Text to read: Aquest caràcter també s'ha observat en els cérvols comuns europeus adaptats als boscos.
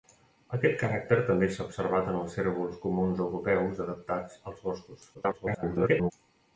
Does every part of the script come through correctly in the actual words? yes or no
no